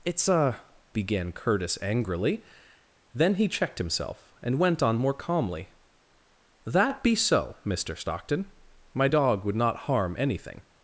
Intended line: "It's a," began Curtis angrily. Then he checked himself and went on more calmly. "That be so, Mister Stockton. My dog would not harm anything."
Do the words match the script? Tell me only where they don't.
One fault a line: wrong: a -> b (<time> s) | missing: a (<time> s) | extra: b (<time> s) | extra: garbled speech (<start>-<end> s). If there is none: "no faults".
no faults